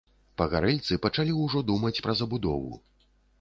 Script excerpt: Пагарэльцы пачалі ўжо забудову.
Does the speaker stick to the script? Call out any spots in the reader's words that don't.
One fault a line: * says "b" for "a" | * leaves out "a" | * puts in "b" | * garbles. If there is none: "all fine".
* puts in "думаць пра"